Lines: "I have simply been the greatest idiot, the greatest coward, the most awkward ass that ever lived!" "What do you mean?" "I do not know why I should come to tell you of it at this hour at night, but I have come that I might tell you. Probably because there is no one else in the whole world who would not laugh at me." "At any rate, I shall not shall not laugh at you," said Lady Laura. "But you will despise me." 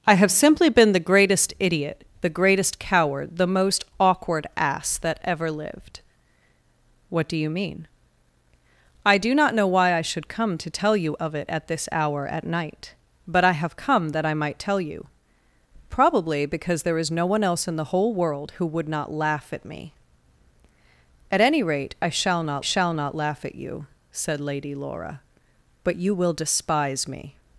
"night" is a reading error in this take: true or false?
false